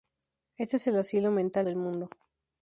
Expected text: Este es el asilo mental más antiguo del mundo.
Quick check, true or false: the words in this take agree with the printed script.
false